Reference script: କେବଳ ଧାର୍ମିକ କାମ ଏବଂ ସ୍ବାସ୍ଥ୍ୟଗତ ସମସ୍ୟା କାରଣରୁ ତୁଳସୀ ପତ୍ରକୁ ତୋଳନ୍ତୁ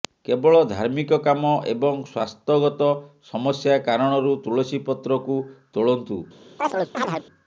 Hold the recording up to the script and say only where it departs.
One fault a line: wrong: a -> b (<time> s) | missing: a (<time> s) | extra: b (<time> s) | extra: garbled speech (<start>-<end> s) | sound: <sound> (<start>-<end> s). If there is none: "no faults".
sound: chirp (6.6-7.2 s)